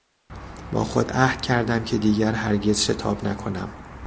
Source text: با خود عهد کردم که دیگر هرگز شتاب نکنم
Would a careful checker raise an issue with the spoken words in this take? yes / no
no